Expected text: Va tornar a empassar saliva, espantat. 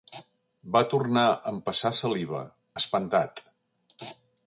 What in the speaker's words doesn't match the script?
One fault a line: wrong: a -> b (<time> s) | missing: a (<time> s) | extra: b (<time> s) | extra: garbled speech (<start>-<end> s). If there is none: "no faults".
no faults